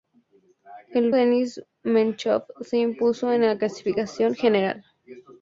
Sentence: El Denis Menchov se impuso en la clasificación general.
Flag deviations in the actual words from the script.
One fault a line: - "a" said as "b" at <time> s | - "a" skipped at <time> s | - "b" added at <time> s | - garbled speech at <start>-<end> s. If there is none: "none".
none